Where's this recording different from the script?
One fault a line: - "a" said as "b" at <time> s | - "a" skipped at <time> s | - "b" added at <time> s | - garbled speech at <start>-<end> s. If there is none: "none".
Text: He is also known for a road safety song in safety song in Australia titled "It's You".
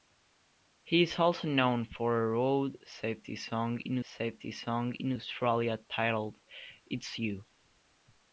none